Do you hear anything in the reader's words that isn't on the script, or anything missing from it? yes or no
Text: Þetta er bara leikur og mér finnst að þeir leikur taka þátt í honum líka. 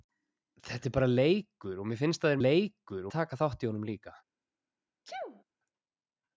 no